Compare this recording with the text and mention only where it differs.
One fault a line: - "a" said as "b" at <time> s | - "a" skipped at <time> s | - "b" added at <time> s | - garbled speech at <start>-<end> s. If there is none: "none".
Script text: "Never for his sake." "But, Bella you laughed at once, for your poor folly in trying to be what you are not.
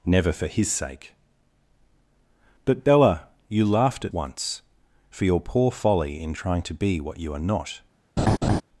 none